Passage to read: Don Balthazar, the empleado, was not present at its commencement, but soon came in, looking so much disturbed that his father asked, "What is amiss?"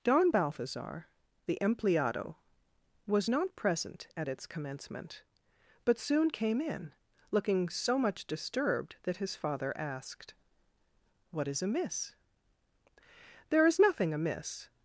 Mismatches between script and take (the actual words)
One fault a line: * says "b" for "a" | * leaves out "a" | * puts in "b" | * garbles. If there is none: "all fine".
* puts in "There is nothing amiss"